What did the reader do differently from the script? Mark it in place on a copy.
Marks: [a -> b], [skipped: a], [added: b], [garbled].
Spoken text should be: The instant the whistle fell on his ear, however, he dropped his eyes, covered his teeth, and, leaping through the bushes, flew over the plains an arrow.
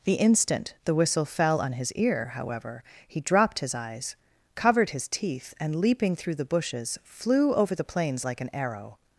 The instant the whistle fell on his ear, however, he dropped his eyes, covered his teeth, and, leaping through the bushes, flew over the plains [added: like] an arrow.